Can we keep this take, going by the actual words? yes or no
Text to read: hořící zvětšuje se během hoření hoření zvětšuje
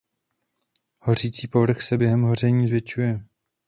no